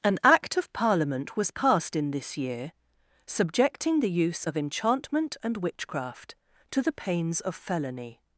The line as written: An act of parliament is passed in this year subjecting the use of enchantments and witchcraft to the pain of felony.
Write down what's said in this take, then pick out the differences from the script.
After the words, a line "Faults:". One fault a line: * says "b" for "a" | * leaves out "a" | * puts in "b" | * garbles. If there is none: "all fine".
An act of parliament was passed in this year subjecting the use of enchantment and witchcraft to the pains of felony.
Faults:
* says "was" for "is"
* says "enchantment" for "enchantments"
* says "pains" for "pain"